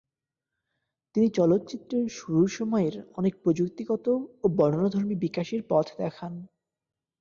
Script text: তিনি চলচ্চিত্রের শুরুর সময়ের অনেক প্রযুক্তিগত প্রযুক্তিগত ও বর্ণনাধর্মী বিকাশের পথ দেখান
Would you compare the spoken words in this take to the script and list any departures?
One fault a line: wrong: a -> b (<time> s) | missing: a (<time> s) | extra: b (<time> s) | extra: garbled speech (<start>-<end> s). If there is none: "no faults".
missing: প্রযুক্তিগত (4.0 s)